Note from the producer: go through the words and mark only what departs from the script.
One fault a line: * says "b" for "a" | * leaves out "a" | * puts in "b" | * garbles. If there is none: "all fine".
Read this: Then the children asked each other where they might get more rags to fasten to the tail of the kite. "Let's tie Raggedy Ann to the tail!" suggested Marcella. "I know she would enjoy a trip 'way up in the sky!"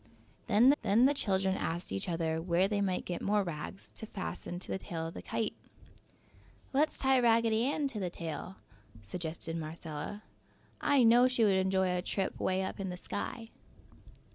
* puts in "then"